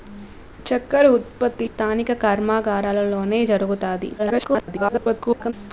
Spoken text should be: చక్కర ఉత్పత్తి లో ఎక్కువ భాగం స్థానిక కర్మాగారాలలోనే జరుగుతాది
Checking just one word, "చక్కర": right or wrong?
right